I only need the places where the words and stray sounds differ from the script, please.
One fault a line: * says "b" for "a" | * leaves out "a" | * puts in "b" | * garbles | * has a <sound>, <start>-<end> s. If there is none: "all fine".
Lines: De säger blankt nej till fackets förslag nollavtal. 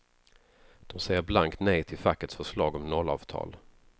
* puts in "om"